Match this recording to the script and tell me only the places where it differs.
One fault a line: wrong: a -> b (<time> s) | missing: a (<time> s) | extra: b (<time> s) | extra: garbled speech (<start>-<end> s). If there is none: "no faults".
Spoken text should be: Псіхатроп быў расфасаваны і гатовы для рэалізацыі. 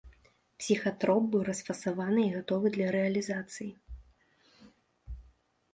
no faults